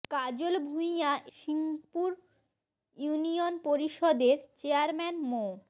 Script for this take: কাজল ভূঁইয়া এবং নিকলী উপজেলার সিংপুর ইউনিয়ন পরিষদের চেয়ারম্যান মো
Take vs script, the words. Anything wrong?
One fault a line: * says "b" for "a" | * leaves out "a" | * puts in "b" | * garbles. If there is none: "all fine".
* leaves out "এবং নিকলী উপজেলার"